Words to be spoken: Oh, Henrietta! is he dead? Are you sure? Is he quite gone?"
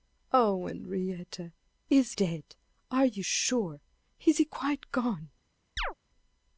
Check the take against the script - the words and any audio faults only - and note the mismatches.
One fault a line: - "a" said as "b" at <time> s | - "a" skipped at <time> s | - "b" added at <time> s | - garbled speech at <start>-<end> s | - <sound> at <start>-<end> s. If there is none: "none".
- "he" skipped at 2.1 s
- chirp at 5.8-5.9 s